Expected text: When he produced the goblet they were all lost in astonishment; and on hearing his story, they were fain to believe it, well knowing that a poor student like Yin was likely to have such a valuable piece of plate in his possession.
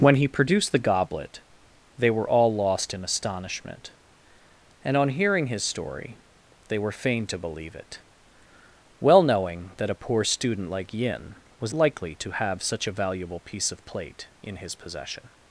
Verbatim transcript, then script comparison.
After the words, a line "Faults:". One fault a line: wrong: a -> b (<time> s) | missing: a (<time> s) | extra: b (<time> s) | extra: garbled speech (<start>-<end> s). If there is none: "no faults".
When he produced the goblet they were all lost in astonishment; and on hearing his story, they were fain to believe it, well knowing that a poor student like Yin was likely to have such a valuable piece of plate in his possession.
Faults:
no faults